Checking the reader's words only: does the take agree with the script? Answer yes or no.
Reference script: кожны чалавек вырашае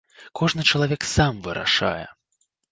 no